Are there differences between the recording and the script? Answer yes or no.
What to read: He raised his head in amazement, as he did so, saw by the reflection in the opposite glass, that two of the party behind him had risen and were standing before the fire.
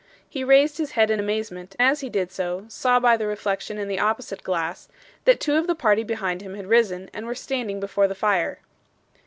no